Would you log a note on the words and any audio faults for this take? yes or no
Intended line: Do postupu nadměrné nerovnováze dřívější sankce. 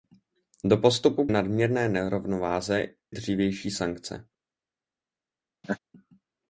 yes